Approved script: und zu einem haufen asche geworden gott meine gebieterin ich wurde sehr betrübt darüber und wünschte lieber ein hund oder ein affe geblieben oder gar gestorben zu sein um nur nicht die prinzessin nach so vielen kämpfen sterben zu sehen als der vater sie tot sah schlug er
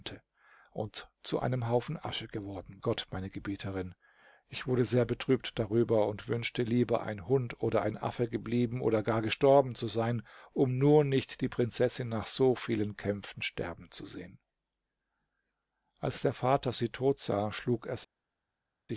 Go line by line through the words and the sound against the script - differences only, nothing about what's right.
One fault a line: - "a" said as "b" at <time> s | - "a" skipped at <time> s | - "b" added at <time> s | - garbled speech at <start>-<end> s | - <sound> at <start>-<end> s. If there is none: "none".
none